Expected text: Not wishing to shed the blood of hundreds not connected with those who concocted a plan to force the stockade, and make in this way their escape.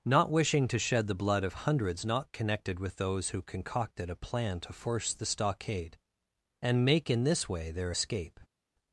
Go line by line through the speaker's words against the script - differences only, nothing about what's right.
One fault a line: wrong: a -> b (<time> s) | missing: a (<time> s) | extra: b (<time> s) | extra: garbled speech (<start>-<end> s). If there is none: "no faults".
no faults